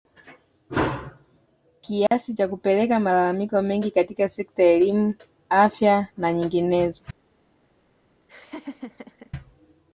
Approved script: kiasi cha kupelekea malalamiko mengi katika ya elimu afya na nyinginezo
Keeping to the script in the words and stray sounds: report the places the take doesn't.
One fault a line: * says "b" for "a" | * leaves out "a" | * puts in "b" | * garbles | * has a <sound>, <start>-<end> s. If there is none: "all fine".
* has a dropout, 2.1-2.1 s
* puts in "sekta"
* has a laugh, 8.3-9.3 s